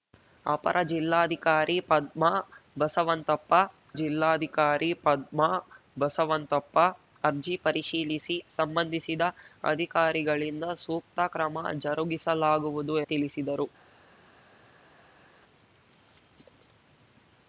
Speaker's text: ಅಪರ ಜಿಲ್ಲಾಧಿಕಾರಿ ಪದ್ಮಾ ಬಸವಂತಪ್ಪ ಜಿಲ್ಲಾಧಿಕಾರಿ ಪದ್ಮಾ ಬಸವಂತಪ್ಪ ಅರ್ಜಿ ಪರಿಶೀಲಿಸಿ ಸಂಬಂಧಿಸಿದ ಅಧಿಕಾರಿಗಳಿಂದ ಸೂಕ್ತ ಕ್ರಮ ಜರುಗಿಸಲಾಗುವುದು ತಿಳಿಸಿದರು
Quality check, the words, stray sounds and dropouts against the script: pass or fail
pass